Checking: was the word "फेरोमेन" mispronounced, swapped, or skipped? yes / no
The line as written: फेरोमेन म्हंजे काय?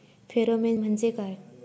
no